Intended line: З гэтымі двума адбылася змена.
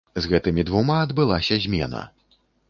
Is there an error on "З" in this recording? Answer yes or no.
no